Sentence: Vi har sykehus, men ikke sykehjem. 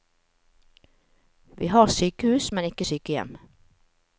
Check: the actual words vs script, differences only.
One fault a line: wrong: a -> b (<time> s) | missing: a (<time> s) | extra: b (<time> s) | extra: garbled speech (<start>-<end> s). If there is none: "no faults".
no faults